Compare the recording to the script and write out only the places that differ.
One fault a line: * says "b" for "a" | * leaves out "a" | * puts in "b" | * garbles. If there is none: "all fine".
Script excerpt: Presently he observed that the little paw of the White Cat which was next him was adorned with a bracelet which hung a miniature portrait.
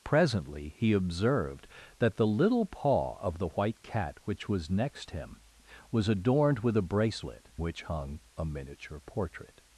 all fine